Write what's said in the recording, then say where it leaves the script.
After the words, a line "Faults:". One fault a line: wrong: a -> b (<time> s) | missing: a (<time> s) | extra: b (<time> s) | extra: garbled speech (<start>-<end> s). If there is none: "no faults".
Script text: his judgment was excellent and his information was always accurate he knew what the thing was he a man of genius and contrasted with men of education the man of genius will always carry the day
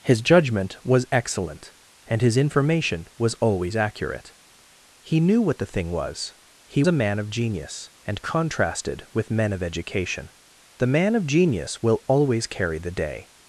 his judgment was excellent and his information was always accurate he knew what the thing was he a man of genius and contrasted with men of education the man of genius will always carry the day
Faults:
no faults